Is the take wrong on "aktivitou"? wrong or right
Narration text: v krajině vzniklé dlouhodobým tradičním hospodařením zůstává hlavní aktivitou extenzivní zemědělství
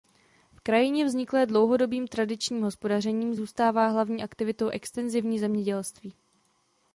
right